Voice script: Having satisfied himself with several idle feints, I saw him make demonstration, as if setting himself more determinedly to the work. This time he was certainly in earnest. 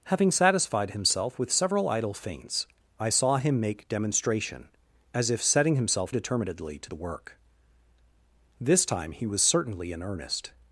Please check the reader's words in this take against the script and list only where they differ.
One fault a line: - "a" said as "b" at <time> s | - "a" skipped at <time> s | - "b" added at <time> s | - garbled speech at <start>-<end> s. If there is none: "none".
- "more" skipped at 6.2 s